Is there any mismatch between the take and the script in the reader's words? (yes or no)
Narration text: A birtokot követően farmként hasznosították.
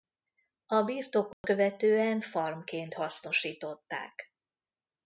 no